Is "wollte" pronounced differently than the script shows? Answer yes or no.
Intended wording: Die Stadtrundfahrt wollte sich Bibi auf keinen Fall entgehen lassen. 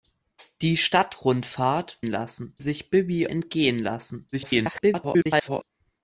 yes